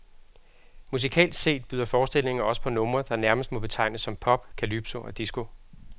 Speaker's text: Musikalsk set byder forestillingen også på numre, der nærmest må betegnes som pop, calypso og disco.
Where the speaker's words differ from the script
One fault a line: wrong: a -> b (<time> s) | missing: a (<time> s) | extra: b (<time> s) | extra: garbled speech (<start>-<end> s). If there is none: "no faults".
no faults